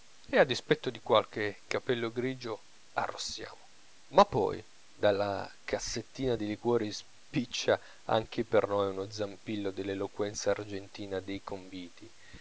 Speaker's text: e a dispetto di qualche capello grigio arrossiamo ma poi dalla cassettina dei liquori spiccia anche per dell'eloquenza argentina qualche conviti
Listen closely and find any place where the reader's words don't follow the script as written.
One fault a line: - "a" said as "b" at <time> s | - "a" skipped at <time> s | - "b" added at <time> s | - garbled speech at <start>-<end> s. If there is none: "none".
- "noi uno zampillo" added at 8.7 s
- "qualche" said as "dei" at 11.2 s